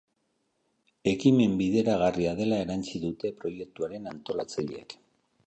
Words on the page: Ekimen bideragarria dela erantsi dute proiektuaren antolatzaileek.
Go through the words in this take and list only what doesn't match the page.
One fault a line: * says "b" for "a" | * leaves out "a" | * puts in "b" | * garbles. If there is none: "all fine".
all fine